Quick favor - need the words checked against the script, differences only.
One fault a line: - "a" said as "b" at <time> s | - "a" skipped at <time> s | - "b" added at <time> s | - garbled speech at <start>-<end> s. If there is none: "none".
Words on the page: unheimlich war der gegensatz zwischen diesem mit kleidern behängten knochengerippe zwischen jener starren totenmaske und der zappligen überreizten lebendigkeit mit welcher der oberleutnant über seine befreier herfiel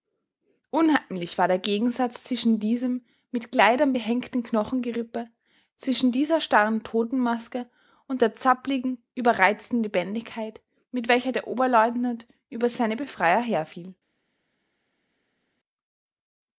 - "jener" said as "dieser" at 6.1 s